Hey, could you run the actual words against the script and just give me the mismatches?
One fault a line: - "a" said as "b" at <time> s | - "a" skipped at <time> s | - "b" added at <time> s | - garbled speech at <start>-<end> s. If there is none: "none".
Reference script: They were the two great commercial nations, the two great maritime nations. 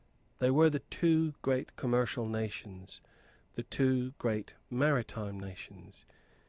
none